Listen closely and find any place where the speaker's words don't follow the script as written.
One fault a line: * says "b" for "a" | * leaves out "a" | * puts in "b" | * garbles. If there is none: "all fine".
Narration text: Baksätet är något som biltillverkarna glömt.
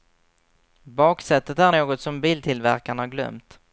all fine